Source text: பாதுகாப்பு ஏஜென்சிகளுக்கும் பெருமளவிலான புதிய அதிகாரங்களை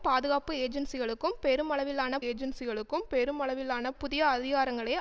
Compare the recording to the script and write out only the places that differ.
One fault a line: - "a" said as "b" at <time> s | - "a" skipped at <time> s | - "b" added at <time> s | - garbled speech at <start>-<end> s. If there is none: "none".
- "ஏஜென்சிகளுக்கும் பெருமளவிலான" added at 2.2 s